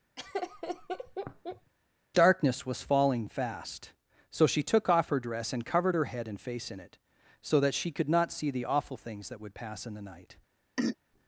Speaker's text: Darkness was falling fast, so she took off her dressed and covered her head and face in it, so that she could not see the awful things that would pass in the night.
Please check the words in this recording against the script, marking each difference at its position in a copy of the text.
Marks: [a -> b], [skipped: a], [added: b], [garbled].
Darkness was falling fast, so she took off her [dressed -> dress] and covered her head and face in it, so that she could not see the awful things that would pass in the night.